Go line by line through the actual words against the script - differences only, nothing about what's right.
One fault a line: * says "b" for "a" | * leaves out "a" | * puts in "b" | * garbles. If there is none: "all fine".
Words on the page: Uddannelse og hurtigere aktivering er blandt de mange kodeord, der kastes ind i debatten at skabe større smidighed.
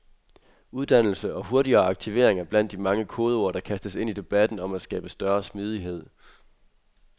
* puts in "om"